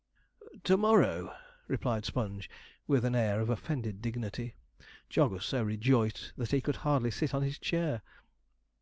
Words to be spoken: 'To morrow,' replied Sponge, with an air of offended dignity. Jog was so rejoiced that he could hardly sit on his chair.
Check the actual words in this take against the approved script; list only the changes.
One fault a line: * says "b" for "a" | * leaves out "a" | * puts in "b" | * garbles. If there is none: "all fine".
all fine